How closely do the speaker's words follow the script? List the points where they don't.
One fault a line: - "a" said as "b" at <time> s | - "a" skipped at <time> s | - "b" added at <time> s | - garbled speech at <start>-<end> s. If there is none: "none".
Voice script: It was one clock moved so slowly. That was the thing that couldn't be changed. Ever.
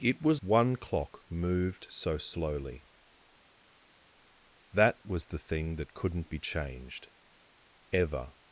none